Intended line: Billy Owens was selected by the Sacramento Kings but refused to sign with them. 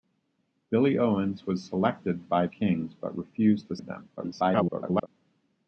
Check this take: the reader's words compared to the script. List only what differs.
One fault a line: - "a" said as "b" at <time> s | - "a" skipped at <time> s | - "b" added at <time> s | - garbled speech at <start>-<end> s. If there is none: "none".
- "the Sacramento" skipped at 2.5 s
- "sign" skipped at 3.8 s
- garbled speech at 4.2-5.1 s